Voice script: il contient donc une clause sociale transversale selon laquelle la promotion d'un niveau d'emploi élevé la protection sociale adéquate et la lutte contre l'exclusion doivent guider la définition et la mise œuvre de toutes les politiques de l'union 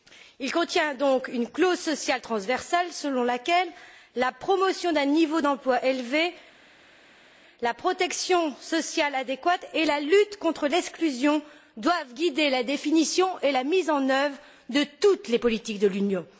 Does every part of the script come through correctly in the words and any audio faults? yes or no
no